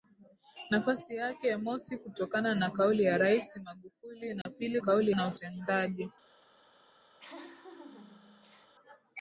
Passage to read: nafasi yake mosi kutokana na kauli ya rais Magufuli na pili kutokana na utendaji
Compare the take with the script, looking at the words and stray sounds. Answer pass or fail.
fail